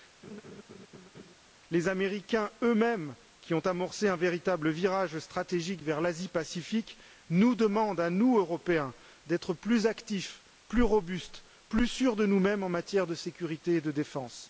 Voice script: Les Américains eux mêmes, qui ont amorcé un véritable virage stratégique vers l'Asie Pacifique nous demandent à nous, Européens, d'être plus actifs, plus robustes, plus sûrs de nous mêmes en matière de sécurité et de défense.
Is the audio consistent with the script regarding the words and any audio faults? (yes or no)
no